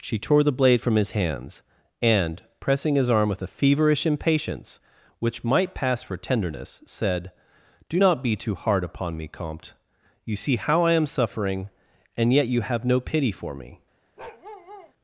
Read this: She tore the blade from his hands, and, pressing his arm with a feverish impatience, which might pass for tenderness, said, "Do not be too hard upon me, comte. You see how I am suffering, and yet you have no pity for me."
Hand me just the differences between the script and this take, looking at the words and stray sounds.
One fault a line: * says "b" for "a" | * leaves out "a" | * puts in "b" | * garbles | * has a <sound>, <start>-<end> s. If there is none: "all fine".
* has a bark, 14.2-14.9 s